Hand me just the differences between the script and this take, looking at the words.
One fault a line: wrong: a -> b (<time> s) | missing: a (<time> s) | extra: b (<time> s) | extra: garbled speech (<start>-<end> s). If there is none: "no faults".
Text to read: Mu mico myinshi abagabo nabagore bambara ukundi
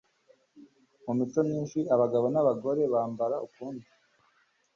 no faults